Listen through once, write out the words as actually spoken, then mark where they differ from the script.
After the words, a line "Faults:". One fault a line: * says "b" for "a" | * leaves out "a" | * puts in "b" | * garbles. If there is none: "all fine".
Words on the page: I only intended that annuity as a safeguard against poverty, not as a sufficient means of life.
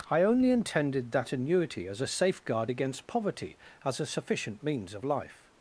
I only intended that annuity as a safeguard against poverty, as a sufficient means of life.
Faults:
* leaves out "not"